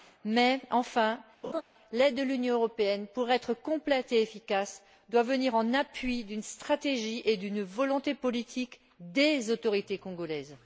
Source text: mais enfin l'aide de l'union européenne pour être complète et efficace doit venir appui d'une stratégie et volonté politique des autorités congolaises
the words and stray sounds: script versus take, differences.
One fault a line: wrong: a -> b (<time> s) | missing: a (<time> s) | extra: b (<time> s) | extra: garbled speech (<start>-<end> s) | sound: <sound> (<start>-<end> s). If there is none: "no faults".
sound: laugh (1.4-1.6 s)
extra: en (5.6 s)
extra: d'une (7.4 s)